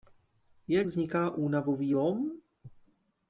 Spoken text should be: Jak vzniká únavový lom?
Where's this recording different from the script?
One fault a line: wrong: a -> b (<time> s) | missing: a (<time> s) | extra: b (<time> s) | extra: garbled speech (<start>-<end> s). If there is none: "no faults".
no faults